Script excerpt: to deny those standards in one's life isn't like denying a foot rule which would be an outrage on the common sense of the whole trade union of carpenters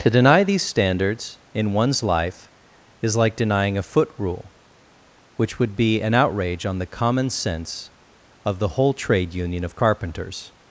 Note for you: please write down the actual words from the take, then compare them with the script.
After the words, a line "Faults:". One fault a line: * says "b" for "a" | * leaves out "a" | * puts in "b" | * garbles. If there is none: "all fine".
to deny these standards in one's life is like denying a foot rule which would be an outrage on the common sense of the whole trade union of carpenters
Faults:
* says "these" for "those"
* says "is" for "isn't"